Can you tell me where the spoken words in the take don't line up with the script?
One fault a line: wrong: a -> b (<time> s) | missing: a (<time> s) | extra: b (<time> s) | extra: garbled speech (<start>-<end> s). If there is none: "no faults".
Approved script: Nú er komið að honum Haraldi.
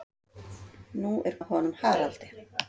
missing: komið (1.3 s)